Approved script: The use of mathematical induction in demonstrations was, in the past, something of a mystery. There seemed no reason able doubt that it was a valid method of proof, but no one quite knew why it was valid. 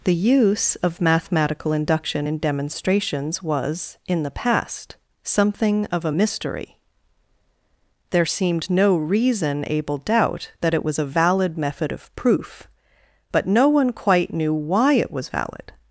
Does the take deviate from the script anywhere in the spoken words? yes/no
no